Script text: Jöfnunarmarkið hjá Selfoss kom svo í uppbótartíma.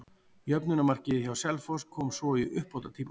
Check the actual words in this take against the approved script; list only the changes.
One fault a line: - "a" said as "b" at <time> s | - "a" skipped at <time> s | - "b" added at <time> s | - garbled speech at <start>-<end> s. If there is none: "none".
none